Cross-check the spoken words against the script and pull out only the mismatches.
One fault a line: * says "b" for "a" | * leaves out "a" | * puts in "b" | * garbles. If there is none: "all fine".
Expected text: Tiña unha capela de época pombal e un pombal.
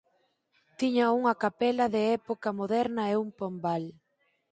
* says "moderna" for "pombal"